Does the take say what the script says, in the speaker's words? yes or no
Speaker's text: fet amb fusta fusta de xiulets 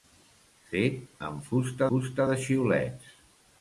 yes